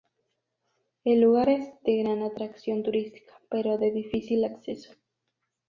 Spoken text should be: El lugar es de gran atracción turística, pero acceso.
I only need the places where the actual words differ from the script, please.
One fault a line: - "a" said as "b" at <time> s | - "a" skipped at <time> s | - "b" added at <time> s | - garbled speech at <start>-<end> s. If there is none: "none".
- "de difícil" added at 3.8 s